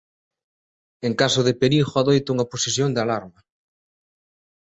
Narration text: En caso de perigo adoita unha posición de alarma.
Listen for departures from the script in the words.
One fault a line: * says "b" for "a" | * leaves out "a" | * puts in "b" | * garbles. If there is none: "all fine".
all fine